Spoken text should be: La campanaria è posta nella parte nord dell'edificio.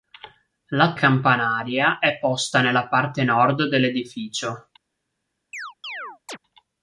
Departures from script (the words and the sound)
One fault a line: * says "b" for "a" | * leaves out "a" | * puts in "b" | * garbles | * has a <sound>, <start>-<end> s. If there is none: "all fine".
* has a chirp, 5.5-6.4 s